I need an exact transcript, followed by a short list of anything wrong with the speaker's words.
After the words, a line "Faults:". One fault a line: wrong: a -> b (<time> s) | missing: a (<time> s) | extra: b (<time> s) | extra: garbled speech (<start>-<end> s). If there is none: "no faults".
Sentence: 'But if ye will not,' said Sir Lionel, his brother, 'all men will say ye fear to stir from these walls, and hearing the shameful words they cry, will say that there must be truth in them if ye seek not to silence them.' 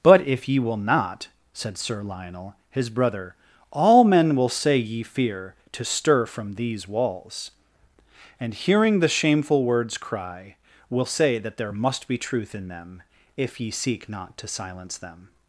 'But if ye will not,' said Sir Lionel, his brother, 'all men will say ye fear to stir from these walls, and hearing the shameful words cry, will say that there must be truth in them if ye seek not to silence them.'
Faults:
missing: they (10.0 s)